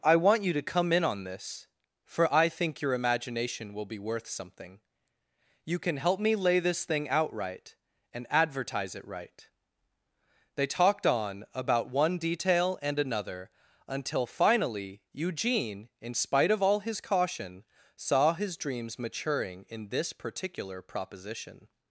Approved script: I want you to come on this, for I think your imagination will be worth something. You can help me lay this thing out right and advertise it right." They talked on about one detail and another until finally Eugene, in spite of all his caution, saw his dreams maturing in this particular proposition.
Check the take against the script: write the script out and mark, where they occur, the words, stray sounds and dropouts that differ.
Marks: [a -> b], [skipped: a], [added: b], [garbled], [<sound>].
I want you to come [added: in] on this, for I think your imagination will be worth something. You can help me lay this thing out right and advertise it right." They talked on about one detail and another until finally Eugene, in spite of all his caution, saw his dreams maturing in this particular proposition.